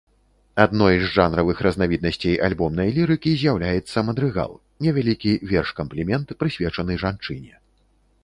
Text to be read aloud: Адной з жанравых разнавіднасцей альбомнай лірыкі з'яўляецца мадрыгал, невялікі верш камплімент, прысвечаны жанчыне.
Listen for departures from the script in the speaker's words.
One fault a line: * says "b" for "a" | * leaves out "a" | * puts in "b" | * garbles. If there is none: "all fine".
all fine